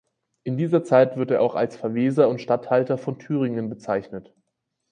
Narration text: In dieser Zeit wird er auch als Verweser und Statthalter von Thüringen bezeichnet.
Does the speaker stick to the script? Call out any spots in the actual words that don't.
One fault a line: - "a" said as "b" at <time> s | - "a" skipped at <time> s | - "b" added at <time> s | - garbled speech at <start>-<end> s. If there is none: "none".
none